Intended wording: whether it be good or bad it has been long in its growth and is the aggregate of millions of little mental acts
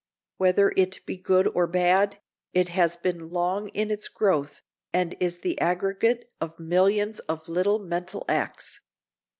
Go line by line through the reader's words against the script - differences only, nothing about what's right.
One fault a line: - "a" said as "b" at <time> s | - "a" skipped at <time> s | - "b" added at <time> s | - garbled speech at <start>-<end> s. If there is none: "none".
none